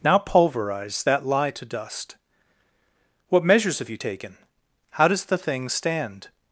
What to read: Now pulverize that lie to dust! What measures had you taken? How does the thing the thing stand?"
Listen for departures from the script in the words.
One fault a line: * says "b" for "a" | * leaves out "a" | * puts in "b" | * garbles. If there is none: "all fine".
* says "have" for "had"
* leaves out "the thing"